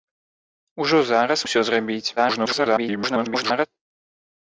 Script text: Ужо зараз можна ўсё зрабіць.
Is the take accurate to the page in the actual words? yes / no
no